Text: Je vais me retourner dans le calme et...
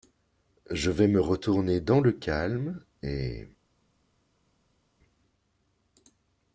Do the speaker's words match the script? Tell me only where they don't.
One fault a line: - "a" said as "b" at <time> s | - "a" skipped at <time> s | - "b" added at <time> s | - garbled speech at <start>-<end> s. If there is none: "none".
none